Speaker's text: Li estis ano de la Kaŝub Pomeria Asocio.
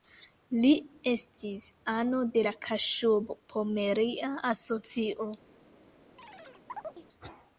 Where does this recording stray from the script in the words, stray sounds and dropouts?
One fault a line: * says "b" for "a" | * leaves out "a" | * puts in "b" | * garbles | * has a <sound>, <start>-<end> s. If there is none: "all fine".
* has a chirp, 6.2-7.1 s